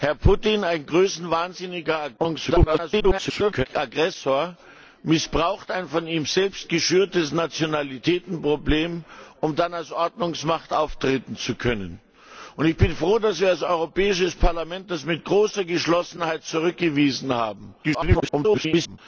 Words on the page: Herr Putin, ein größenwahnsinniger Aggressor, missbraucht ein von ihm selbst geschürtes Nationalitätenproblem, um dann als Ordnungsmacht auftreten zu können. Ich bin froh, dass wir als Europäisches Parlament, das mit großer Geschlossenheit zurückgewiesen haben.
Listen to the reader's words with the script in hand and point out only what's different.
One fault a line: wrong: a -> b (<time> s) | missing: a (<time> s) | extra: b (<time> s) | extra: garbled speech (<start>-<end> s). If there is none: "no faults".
extra: garbled speech (2.2-3.7 s)
extra: garbled speech (17.8-19.0 s)